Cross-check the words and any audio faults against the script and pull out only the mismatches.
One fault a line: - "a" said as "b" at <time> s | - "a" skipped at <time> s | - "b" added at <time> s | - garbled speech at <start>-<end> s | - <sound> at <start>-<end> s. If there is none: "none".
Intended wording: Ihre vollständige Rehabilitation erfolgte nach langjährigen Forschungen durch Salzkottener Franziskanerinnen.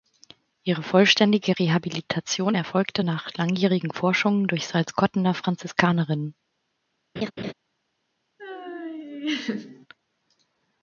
- laugh at 7.2-7.5 s
- laugh at 8.4-9.9 s